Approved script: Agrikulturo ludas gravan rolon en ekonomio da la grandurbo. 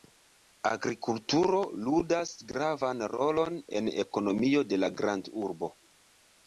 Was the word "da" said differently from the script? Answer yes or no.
yes